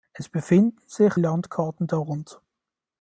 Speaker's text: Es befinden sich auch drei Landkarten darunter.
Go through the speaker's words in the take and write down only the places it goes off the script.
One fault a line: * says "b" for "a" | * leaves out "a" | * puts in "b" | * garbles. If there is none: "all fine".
* leaves out "auch drei"